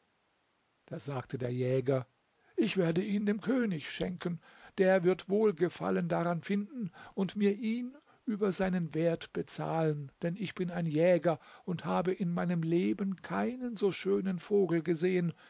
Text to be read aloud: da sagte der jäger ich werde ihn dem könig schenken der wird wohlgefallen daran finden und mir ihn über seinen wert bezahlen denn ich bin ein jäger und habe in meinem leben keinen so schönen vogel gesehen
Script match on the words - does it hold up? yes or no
yes